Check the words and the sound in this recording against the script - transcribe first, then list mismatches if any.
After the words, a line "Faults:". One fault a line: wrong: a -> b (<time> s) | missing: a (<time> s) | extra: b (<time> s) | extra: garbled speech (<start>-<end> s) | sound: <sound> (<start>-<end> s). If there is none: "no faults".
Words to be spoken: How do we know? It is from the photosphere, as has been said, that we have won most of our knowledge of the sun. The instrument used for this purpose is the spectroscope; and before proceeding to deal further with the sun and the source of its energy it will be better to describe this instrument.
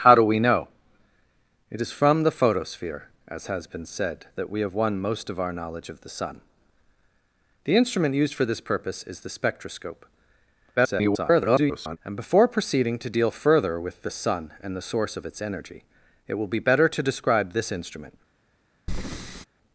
How do we know? It is from the photosphere, as has been said, that we have won most of our knowledge of the sun. The instrument used for this purpose is the spectroscope; [garbled] and before proceeding to deal further with the sun and the source of its energy it will be better to describe this instrument.
Faults:
extra: garbled speech (10.8-12.0 s)
sound: breath (18.9-19.5 s)